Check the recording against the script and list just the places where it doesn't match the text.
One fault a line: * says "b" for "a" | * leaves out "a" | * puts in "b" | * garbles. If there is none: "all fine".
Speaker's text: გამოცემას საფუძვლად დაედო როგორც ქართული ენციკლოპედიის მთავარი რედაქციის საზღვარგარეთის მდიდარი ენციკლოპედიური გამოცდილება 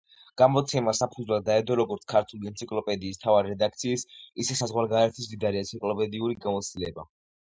* puts in "ისე"